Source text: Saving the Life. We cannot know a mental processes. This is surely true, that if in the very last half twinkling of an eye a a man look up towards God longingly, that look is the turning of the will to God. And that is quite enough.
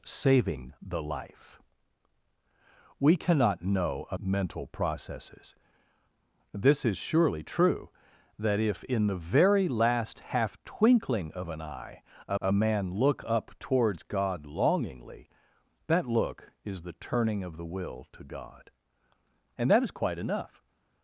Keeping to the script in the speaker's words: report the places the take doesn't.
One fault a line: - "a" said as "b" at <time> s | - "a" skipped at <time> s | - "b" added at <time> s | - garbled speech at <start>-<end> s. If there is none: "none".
none